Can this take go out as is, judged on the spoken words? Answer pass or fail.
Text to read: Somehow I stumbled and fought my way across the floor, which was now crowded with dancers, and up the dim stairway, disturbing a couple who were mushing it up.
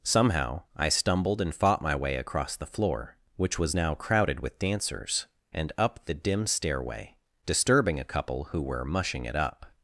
pass